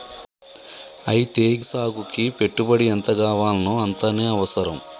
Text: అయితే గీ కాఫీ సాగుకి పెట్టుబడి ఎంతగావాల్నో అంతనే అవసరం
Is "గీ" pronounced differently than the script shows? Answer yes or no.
yes